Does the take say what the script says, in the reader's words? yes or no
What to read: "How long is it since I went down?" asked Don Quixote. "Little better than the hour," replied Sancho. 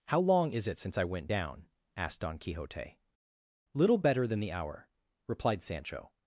yes